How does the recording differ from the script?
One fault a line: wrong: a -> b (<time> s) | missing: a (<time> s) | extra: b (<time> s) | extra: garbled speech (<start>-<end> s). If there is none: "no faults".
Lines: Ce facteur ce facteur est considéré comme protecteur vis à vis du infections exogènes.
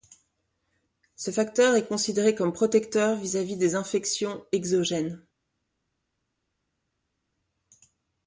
missing: ce facteur (1.8 s)
wrong: du -> des (3.5 s)